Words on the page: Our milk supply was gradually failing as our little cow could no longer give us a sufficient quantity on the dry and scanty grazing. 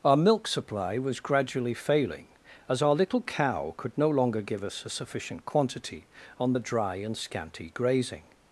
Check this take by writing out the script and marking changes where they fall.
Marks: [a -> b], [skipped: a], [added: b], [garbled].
Our milk supply was gradually failing as our little cow could no longer give us a sufficient quantity on the dry and scanty grazing.